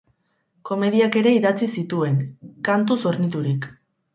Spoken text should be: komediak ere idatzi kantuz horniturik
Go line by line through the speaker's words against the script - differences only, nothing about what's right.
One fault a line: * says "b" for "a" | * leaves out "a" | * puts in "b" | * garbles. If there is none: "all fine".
* puts in "zituen"